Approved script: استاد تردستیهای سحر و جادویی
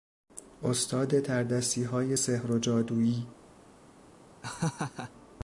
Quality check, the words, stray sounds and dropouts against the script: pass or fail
fail